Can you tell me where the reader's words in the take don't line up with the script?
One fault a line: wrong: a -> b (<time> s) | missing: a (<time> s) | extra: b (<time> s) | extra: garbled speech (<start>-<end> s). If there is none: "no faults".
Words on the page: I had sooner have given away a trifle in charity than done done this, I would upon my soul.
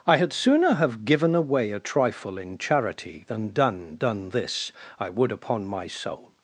no faults